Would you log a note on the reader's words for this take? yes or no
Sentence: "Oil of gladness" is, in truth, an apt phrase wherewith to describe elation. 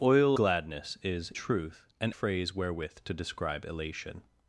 yes